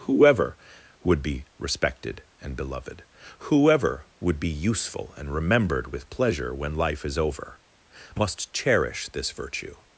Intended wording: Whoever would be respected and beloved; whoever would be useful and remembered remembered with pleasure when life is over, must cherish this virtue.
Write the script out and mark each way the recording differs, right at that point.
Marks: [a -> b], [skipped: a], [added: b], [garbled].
Whoever would be respected and beloved; whoever would be useful and remembered [skipped: remembered] with pleasure when life is over, must cherish this virtue.